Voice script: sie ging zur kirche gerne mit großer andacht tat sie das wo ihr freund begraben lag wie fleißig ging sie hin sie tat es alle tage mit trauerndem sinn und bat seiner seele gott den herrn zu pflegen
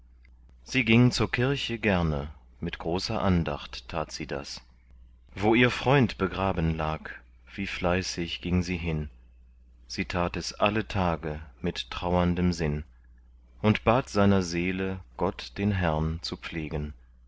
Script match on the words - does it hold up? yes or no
yes